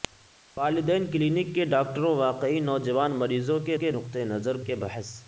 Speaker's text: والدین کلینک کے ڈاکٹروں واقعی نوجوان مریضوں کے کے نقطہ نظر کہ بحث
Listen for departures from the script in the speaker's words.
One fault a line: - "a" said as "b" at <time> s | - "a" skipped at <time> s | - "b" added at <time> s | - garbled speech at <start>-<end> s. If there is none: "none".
none